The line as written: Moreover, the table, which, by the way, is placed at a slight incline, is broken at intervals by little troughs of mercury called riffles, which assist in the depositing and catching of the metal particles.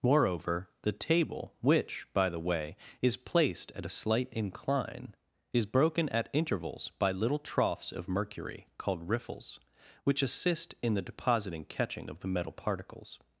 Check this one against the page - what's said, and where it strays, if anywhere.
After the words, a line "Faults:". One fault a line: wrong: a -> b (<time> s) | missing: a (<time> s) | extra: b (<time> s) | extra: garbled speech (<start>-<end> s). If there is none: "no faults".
Moreover, the table, which, by the way, is placed at a slight incline, is broken at intervals by little troughs of mercury called riffles, which assist in the depositing catching of the metal particles.
Faults:
missing: and (11.7 s)